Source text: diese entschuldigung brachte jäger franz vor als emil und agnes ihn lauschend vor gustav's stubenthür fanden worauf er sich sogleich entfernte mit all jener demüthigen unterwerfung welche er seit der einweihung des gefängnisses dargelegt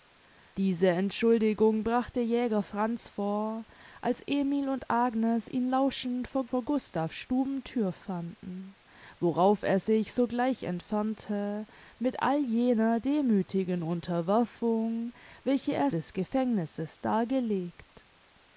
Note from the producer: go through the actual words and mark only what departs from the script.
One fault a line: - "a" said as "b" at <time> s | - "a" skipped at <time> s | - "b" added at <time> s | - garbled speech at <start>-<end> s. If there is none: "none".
- "vor" added at 6.4 s
- "seit der einweihung" skipped at 15.9 s